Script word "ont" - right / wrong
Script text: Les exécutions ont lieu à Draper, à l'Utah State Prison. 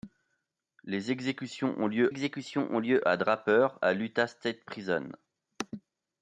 right